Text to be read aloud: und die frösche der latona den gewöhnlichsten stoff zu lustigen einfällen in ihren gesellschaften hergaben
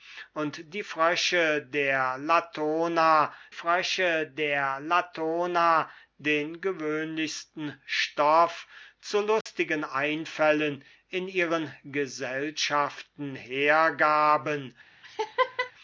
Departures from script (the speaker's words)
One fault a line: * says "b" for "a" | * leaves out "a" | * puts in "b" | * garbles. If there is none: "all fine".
* puts in "frösche der latona"